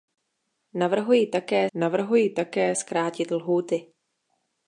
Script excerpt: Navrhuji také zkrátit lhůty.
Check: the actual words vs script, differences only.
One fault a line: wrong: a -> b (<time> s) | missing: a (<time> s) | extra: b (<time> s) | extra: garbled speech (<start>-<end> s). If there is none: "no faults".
extra: navrhuji také (1.7 s)